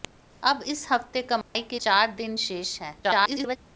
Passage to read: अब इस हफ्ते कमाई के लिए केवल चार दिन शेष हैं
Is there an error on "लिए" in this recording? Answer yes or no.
yes